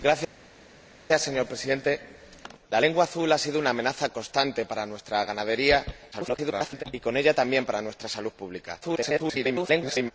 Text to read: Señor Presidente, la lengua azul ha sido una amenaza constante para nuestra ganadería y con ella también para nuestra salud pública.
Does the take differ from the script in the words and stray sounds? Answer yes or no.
yes